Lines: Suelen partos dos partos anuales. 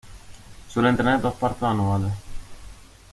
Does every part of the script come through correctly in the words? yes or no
no